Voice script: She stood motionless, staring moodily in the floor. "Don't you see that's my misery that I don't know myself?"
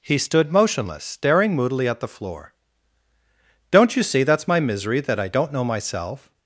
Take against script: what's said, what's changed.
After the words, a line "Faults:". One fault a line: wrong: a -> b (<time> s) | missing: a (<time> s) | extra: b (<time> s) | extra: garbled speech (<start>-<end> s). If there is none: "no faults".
He stood motionless, staring moodily at the floor. "Don't you see that's my misery that I don't know myself?"
Faults:
wrong: She -> He (0.0 s)
wrong: in -> at (1.9 s)